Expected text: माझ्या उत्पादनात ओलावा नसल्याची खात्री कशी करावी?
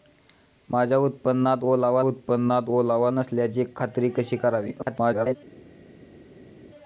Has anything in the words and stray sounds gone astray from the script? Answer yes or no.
yes